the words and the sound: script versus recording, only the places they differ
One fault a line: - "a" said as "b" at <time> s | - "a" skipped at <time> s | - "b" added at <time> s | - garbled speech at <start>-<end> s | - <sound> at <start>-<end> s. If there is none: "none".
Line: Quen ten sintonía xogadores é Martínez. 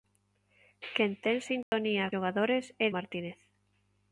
- dropout at 1.6-1.7 s